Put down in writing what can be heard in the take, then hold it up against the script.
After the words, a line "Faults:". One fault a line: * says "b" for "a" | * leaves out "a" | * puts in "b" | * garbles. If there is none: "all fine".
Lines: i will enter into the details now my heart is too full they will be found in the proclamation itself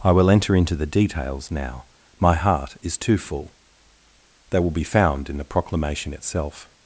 i will enter into the details now my heart is too full they will be found in the proclamation itself
Faults:
all fine